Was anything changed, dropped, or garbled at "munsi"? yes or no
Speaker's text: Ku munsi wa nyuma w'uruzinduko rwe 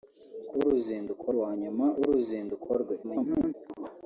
yes